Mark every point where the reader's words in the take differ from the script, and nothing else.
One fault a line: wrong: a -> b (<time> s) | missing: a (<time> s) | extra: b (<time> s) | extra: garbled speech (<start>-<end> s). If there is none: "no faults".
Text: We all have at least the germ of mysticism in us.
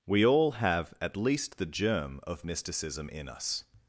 no faults